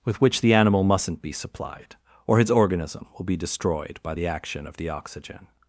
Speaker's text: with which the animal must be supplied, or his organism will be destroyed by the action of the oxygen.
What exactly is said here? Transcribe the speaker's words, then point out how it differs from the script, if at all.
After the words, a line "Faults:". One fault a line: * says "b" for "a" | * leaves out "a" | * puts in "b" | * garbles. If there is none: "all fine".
with which the animal mustn't be supplied, or his organism will be destroyed by the action of the oxygen.
Faults:
* says "mustn't" for "must"